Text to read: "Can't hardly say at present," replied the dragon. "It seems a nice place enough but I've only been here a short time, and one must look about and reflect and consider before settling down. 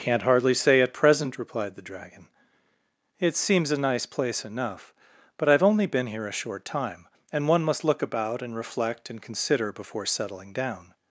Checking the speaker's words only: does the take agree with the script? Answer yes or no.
yes